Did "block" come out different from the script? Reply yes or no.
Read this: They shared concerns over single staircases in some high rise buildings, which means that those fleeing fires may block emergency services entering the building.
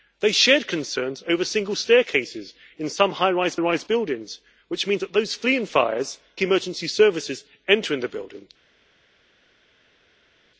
yes